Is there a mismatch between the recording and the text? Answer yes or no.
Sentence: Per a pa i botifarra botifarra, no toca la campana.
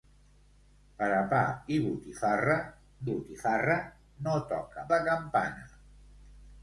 no